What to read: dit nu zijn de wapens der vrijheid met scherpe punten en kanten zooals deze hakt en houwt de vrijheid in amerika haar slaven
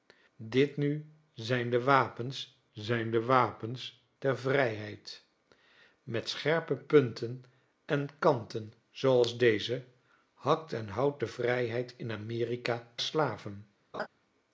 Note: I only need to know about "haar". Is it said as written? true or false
false